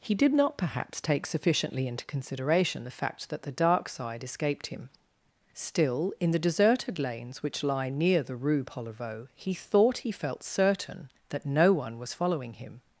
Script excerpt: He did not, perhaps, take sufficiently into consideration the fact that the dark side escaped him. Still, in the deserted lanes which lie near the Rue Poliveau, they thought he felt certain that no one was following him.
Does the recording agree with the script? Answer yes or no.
no